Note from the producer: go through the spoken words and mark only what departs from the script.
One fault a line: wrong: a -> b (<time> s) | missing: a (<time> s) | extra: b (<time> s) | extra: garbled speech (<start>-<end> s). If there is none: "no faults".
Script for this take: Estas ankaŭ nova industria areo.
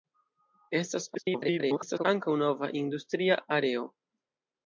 extra: garbled speech (1.1-2.0 s)